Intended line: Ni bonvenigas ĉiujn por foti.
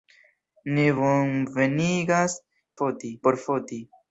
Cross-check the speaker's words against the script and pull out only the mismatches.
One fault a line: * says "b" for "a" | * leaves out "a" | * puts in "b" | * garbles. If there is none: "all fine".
* says "foti" for "ĉiujn"